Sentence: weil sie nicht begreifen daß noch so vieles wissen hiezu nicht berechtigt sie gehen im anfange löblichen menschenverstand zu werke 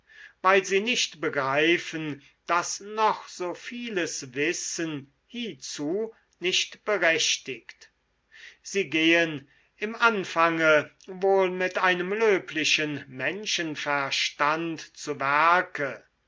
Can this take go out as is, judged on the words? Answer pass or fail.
fail